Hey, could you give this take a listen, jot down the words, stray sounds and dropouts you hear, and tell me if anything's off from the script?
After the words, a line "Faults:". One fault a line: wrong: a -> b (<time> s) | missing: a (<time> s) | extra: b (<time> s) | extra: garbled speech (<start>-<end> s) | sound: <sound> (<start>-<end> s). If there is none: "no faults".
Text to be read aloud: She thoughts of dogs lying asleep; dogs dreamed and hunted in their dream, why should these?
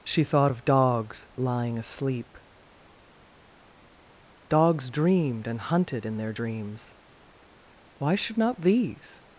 She thought of dogs lying asleep; dogs dreamed and hunted in their dreams, why should not these?
Faults:
wrong: thoughts -> thought (0.2 s)
wrong: dream -> dreams (6.3 s)
extra: not (8.4 s)